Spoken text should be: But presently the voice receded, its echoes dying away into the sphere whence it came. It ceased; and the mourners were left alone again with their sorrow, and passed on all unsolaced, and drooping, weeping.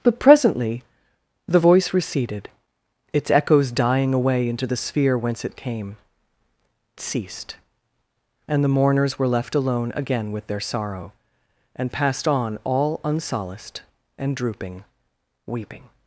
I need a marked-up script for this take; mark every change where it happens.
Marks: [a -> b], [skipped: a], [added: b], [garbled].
But presently the voice receded, its echoes dying away into the sphere whence it came. [skipped: It] ceased; and the mourners were left alone again with their sorrow, and passed on all unsolaced, and drooping, weeping.